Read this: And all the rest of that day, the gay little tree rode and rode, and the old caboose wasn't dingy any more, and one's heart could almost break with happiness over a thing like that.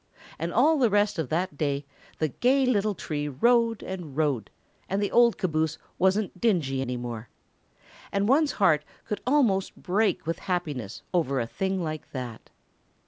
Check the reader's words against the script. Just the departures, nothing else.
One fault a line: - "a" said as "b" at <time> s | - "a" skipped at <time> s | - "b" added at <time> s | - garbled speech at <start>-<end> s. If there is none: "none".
none